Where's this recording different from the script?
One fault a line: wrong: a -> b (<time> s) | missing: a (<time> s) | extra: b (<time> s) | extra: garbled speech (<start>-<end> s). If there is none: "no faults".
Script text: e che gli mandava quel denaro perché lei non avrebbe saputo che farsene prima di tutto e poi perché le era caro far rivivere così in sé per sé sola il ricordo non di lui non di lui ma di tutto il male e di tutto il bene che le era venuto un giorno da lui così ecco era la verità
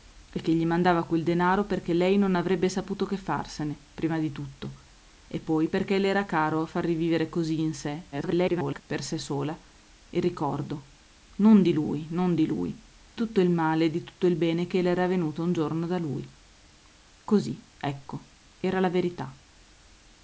extra: garbled speech (8.1-8.8 s)
missing: ma di (12.8 s)